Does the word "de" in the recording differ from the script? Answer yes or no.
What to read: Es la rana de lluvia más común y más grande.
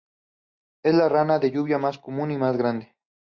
no